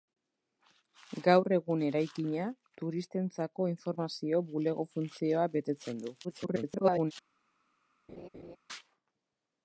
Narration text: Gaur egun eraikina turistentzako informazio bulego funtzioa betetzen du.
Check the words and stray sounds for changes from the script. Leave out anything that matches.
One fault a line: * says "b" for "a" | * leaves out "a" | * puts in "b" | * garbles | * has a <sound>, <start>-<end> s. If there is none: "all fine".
* garbles
* has a laugh, 8.1-8.6 s